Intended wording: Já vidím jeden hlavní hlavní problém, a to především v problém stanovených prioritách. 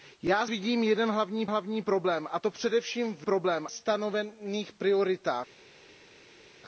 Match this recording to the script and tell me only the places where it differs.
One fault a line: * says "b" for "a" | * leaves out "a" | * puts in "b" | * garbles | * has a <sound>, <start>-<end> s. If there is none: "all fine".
all fine